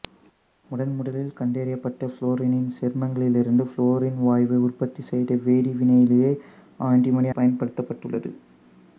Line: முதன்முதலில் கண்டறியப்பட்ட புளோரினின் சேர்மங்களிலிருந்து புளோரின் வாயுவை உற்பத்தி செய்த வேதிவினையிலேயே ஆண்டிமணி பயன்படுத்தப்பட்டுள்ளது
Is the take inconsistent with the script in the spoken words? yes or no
no